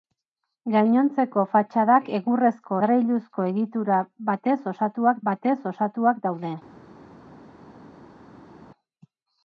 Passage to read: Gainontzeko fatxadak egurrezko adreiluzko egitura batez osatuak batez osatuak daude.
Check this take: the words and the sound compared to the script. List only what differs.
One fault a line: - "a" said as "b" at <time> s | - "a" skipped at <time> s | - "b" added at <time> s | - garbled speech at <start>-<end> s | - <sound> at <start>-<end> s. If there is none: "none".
none